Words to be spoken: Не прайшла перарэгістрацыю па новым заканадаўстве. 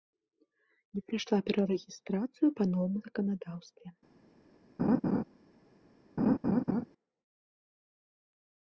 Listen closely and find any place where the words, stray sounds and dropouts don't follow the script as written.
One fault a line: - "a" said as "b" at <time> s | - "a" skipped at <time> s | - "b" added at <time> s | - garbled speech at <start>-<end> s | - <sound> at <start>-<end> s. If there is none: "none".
- laugh at 4.8-5.2 s
- laugh at 6.2-6.9 s